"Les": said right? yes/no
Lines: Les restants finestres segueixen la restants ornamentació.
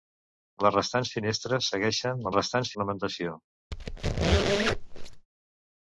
yes